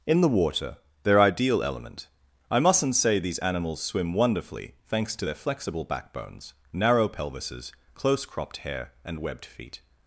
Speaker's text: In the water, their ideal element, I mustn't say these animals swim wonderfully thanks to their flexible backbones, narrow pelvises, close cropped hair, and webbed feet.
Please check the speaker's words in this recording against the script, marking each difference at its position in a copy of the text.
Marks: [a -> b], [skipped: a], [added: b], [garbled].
In the water, their ideal element, I mustn't say these animals swim wonderfully thanks to their flexible backbones, narrow pelvises, close cropped hair, and webbed feet.